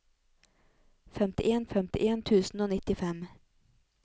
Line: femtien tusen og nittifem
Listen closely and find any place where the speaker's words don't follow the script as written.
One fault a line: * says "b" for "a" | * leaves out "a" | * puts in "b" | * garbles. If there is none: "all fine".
* puts in "femtien"